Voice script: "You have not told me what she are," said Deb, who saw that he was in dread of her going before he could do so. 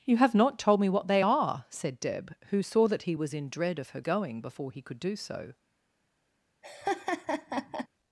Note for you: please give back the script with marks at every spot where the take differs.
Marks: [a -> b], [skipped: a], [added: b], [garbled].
"You have not told me what [she -> they] are," said Deb, who saw that he was in dread of her going before he could do so.